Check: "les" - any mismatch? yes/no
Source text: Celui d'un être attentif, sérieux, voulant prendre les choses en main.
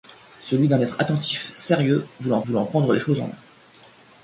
no